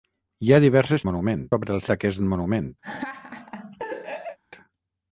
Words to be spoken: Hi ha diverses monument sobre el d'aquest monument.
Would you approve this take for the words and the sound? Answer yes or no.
no